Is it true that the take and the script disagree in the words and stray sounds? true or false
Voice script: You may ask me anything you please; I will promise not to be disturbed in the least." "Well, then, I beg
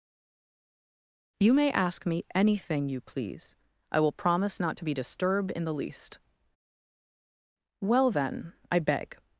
false